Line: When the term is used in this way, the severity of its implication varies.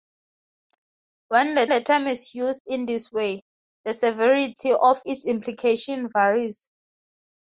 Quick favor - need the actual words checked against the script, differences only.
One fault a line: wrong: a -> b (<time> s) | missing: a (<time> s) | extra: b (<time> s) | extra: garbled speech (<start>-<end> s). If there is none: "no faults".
extra: the (1.7 s)